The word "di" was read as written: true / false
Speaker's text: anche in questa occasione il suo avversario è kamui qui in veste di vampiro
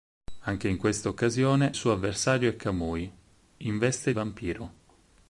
false